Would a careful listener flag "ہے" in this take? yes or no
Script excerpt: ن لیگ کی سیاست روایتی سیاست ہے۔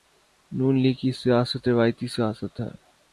no